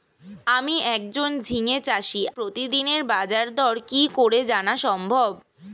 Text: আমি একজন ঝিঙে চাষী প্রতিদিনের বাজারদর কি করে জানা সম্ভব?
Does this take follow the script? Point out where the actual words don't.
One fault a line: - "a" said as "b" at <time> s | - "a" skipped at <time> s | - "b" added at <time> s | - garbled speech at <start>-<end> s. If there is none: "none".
none